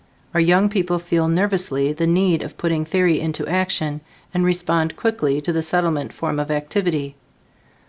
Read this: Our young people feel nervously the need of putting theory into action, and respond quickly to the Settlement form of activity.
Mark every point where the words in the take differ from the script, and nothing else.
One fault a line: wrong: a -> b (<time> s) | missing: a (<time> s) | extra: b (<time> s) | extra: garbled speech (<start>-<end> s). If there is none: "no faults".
no faults